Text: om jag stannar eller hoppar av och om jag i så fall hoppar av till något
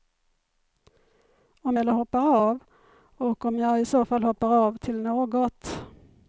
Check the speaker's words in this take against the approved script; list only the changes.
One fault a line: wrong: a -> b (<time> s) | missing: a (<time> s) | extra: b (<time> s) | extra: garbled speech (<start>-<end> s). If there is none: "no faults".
missing: jag stannar (1.8 s)